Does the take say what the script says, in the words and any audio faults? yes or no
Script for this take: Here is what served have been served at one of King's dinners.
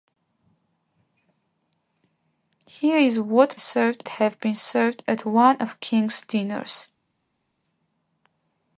yes